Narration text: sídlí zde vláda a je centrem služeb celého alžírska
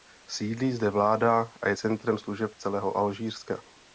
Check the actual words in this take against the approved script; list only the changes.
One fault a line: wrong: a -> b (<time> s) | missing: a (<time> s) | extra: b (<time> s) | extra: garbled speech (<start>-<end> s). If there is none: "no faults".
no faults